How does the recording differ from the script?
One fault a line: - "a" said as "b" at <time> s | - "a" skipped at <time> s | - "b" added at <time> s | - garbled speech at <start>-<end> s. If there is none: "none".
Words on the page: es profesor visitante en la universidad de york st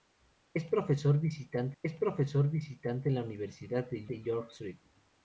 - "es profesor visitante" added at 1.8 s
- "de" added at 4.1 s